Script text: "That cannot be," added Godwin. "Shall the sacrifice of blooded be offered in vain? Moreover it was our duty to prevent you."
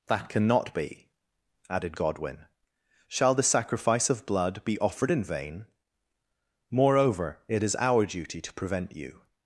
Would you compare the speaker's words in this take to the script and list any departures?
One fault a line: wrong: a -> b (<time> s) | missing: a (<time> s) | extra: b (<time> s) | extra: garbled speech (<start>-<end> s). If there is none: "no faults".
wrong: blooded -> blood (4.2 s)
wrong: was -> is (7.6 s)